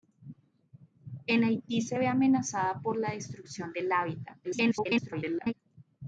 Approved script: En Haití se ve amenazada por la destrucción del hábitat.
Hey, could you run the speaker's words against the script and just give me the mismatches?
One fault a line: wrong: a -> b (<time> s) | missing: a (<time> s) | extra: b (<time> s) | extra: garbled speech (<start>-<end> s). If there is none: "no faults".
extra: garbled speech (4.4-5.5 s)